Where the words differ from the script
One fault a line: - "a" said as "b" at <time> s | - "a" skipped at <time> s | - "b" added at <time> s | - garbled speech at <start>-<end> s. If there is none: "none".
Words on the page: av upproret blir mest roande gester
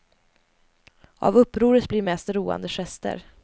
none